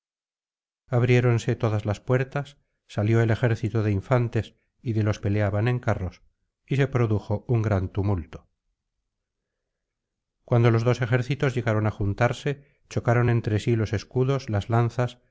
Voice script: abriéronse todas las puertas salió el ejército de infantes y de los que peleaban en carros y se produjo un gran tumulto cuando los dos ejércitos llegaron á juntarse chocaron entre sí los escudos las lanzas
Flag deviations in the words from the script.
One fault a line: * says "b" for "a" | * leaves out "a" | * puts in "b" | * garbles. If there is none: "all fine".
* leaves out "que"